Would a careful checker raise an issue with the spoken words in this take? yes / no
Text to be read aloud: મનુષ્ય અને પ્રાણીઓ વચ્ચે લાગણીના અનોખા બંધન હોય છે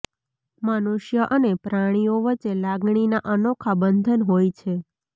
no